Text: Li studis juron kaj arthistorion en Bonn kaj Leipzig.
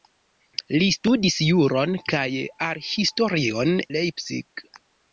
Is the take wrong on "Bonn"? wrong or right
wrong